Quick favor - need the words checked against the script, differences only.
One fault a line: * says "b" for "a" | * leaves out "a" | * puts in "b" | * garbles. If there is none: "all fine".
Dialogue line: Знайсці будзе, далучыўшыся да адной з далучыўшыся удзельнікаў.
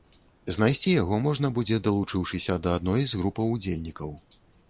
* puts in "яго можна"
* says "групаў" for "далучыўшыся"